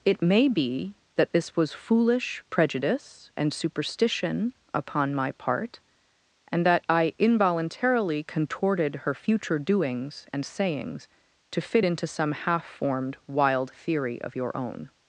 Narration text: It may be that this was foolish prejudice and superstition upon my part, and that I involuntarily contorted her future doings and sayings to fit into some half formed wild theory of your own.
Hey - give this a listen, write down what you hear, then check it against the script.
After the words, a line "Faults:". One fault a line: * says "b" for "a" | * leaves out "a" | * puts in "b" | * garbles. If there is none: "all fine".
It may be that this was foolish prejudice and superstition upon my part, and that I involuntarily contorted her future doings and sayings to fit into some half formed wild theory of your own.
Faults:
all fine